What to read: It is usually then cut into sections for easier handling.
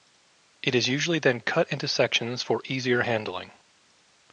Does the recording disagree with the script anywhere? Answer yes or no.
no